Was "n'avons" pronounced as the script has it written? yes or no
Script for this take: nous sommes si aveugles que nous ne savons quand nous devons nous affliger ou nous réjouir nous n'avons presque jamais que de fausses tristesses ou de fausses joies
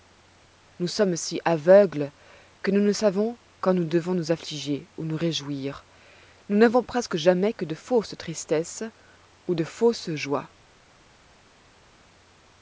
yes